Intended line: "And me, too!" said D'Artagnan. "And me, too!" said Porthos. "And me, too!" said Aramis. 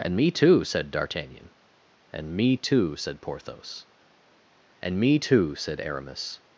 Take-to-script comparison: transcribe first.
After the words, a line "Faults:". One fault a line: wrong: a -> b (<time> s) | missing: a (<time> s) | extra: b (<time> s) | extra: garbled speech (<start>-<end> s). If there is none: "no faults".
"And me, too!" said D'Artagnan. "And me, too!" said Porthos. "And me, too!" said Aramis.
Faults:
no faults